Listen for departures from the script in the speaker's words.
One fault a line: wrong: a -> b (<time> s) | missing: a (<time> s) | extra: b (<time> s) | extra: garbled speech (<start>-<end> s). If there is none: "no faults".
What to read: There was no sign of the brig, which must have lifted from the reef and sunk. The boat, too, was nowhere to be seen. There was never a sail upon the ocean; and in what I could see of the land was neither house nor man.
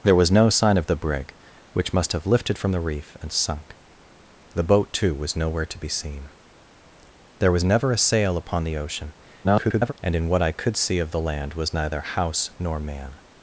extra: garbled speech (9.4-9.9 s)